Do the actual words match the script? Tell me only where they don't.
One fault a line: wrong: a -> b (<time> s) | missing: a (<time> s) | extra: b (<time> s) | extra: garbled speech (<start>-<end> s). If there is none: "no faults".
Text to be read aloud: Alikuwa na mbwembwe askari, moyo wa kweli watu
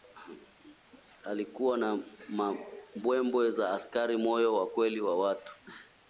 extra: za (3.5 s)
extra: wa (5.0 s)